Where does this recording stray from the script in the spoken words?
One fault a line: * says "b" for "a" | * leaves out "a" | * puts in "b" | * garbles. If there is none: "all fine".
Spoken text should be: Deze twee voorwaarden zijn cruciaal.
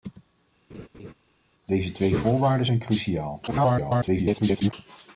* garbles